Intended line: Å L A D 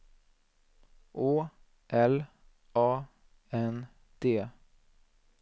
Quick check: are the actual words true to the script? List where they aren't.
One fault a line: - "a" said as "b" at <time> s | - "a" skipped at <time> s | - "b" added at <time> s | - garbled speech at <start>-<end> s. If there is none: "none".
- "N" added at 3.6 s